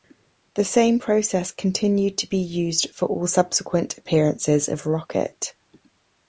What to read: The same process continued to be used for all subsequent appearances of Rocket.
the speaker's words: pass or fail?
pass